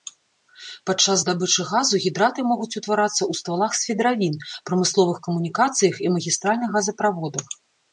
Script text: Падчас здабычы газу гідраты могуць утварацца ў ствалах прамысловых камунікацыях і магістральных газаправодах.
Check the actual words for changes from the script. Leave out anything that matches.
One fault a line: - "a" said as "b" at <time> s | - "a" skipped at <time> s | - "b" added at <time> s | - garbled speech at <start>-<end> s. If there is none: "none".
- "свідравін" added at 3.8 s